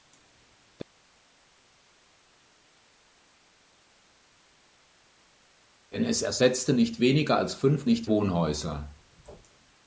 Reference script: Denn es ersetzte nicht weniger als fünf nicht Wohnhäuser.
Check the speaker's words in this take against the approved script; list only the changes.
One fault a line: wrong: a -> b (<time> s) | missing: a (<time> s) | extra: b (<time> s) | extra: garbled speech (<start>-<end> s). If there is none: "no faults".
no faults